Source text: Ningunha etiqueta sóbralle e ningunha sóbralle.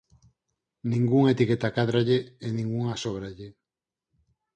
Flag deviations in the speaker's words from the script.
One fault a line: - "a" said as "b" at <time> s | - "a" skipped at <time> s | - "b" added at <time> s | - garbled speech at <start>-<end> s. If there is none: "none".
- "sóbralle" said as "cádralle" at 1.8 s